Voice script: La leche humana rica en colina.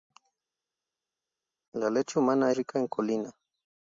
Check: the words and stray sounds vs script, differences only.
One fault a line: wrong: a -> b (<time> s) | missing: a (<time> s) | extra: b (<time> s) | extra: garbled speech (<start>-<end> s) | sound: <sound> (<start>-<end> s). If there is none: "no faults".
no faults